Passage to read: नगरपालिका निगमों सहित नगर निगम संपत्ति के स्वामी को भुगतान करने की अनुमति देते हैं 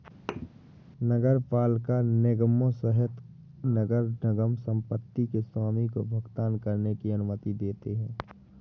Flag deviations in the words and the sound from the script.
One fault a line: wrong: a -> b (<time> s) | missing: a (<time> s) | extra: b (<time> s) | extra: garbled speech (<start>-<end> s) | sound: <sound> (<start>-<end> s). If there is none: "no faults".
sound: thud (0.3-0.5 s)